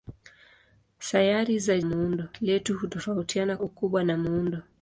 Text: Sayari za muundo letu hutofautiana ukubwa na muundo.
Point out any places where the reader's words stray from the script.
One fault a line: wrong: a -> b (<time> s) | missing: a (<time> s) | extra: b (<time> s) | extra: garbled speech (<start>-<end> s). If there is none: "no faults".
no faults